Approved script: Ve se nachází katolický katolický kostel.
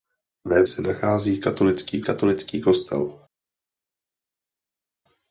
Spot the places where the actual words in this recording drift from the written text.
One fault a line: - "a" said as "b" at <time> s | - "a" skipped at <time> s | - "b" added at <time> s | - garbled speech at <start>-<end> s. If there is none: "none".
none